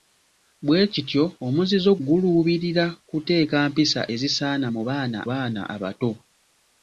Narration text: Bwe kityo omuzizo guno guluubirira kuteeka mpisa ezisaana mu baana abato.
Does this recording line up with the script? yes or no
no